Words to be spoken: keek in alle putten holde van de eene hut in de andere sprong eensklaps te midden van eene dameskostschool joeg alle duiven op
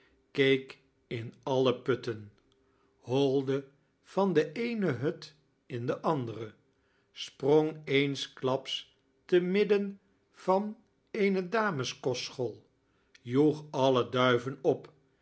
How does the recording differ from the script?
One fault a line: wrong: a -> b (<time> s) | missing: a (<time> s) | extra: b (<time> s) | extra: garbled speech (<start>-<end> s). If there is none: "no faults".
no faults